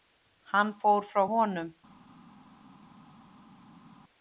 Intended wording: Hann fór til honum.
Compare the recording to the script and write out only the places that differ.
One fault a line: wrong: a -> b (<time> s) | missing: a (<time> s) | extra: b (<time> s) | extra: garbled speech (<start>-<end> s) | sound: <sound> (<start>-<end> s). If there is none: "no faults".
wrong: til -> frá (1.1 s)